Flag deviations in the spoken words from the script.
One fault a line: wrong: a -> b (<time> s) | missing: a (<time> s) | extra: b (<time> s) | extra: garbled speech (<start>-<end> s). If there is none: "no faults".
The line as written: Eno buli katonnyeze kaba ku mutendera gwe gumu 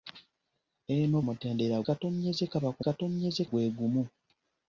wrong: buli -> mutendera (1.3 s)
wrong: mutendera -> katonnyeze (2.8 s)